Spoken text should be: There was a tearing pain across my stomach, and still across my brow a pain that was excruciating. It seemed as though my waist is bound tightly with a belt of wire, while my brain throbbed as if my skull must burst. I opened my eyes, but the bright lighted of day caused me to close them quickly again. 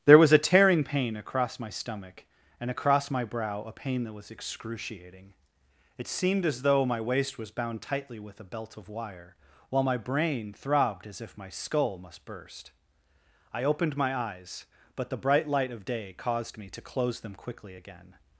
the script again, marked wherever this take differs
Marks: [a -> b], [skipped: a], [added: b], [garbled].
There was a tearing pain across my stomach, and [skipped: still] across my brow a pain that was excruciating. It seemed as though my waist [is -> was] bound tightly with a belt of wire, while my brain throbbed as if my skull must burst. I opened my eyes, but the bright [lighted -> light] of day caused me to close them quickly again.